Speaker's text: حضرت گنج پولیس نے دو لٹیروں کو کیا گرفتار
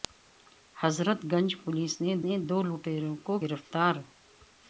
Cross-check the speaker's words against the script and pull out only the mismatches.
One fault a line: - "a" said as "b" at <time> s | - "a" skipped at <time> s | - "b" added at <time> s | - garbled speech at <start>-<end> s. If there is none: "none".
- "نے" added at 2.2 s
- "کیا" skipped at 3.3 s